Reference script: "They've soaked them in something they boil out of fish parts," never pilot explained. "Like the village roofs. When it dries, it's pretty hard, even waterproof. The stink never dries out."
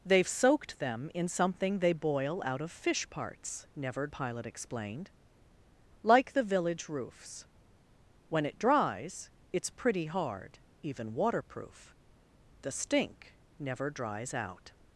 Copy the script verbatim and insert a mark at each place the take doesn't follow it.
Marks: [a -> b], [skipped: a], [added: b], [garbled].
"They've soaked them in something they boil out of fish parts," never pilot explained. "Like the village roofs. When it dries, it's pretty hard, even waterproof. The stink never dries out."